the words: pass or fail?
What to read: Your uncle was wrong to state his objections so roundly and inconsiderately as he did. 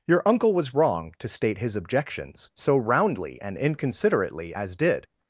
fail